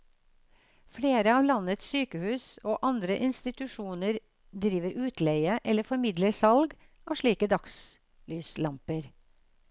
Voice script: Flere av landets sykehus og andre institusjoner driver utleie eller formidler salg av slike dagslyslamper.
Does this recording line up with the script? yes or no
yes